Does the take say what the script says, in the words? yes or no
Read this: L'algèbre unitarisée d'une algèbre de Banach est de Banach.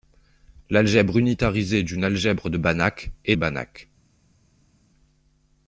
no